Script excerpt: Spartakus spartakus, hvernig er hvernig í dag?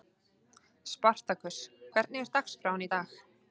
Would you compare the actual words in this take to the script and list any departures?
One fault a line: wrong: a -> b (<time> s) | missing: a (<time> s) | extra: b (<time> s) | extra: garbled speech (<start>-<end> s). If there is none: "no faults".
missing: spartakus (1.6 s)
wrong: hvernig -> dagskráin (2.4 s)